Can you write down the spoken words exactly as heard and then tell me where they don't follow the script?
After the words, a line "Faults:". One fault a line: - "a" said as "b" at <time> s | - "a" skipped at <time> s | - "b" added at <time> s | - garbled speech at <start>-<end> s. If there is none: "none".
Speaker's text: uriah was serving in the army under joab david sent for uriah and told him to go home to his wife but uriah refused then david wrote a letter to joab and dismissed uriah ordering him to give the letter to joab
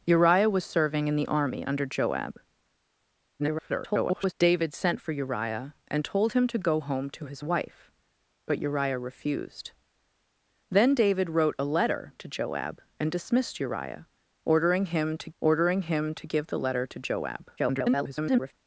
uriah was serving in the army under joab [garbled] david sent for uriah and told him to go home to his wife but uriah refused then david wrote a letter to joab and dismissed uriah ordering him to ordering him to give the letter to joab [garbled]
Faults:
- garbled speech at 3.4-4.3 s
- "ordering him to" added at 15.4 s
- garbled speech at 17.6-18.5 s